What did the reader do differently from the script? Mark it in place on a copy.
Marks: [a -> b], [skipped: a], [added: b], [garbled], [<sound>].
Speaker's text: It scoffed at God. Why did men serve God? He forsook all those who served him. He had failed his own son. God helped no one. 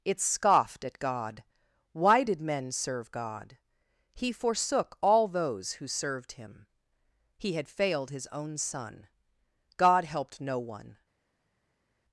It scoffed at God. Why did men serve God? He forsook all those who served him. He had failed his own son. God helped no one.